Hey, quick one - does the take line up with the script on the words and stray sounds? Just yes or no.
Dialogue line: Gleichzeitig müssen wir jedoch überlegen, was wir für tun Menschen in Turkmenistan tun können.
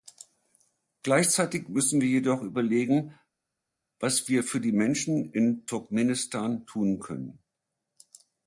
no